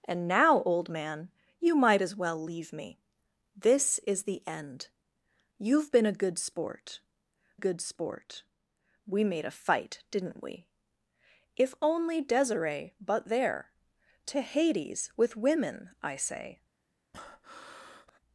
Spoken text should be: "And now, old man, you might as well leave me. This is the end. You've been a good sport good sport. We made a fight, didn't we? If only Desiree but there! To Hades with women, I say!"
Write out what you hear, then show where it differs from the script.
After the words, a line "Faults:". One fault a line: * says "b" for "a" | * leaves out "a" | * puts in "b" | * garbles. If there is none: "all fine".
"And now, old man, you might as well leave me. This is the end. You've been a good sport good sport. We made a fight, didn't we? If only Desiree but there! To Hades with women, I say!"
Faults:
all fine